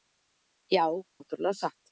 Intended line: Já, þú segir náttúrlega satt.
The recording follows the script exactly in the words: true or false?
false